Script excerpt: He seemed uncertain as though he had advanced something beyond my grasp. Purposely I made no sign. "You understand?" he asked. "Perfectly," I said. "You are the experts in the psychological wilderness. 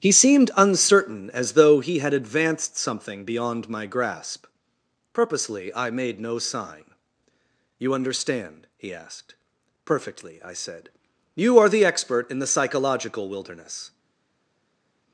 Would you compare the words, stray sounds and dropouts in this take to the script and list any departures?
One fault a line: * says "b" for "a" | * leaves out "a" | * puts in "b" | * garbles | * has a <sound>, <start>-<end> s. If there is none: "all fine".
* says "expert" for "experts"